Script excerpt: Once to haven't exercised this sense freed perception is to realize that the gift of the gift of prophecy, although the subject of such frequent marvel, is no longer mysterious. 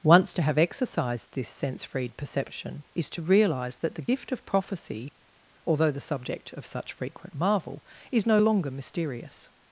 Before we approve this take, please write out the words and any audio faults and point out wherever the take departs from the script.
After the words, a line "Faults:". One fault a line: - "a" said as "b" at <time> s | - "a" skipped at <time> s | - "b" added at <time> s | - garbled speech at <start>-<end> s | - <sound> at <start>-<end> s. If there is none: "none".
Once to have exercised this sense freed perception is to realize that the gift of prophecy, although the subject of such frequent marvel, is no longer mysterious.
Faults:
- "haven't" said as "have" at 0.4 s
- "the gift of" skipped at 4.5 s